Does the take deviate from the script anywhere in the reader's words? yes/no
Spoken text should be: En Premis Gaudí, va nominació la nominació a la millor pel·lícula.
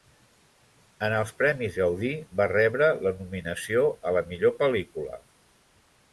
yes